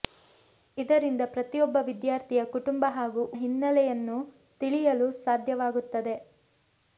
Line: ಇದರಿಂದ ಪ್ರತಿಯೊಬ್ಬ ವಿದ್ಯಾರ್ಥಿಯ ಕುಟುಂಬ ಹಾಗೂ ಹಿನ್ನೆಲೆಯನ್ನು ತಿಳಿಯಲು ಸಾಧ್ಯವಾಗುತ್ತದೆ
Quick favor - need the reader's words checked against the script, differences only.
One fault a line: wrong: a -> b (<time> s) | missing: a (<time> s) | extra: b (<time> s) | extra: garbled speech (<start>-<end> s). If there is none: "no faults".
no faults